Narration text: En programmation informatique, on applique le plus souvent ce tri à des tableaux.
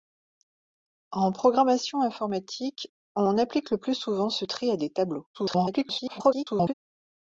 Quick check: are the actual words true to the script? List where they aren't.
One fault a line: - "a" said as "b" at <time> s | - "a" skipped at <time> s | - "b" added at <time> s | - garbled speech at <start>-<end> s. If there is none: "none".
- garbled speech at 5.3-6.7 s